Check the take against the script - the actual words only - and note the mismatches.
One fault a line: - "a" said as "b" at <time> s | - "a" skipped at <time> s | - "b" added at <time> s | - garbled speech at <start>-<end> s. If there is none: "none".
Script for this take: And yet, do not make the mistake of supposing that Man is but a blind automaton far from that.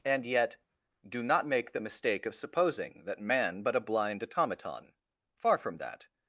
- "is" skipped at 3.6 s